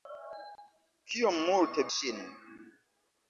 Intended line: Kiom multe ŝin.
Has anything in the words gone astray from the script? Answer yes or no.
no